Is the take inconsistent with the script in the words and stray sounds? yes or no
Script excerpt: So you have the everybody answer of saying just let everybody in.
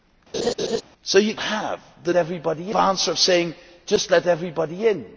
yes